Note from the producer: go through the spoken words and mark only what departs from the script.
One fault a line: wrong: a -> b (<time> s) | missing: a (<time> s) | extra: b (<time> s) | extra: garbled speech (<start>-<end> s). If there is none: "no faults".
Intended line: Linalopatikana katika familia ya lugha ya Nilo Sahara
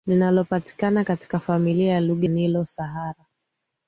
missing: ya (2.3 s)